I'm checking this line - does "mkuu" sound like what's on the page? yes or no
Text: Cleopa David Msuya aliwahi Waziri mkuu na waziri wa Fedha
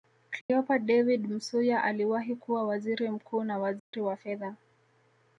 yes